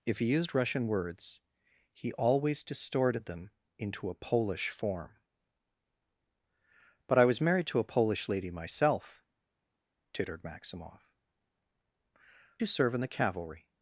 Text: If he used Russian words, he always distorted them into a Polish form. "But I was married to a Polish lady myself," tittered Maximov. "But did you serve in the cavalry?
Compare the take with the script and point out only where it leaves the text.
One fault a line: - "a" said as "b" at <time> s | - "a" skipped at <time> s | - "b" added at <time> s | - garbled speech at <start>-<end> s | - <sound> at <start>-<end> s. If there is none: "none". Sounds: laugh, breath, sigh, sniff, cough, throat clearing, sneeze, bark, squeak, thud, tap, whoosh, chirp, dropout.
- "But did" skipped at 11.1 s